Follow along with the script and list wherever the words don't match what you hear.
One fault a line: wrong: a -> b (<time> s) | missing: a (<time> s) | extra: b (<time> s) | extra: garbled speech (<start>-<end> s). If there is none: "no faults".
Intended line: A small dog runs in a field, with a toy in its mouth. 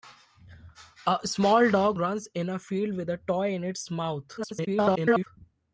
extra: garbled speech (4.4-5.3 s)